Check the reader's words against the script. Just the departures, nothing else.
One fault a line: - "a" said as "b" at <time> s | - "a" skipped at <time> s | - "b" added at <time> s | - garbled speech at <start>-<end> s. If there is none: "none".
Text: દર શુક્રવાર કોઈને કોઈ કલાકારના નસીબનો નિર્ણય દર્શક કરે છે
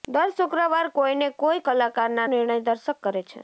- "નસીબનો" skipped at 2.3 s